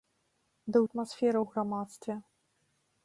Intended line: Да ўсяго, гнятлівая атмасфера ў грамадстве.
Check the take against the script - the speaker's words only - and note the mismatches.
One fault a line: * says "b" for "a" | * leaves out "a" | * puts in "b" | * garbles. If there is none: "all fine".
* leaves out "ўсяго гнятлівая"